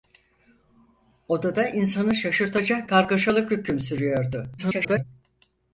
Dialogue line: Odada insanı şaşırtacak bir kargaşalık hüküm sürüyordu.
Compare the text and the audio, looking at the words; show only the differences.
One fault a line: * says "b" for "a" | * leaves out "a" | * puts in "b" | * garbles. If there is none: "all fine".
* leaves out "bir"
* garbles